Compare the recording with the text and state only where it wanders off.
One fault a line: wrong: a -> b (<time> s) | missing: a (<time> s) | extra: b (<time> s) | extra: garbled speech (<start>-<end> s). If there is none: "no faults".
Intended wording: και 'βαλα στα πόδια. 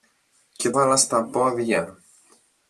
no faults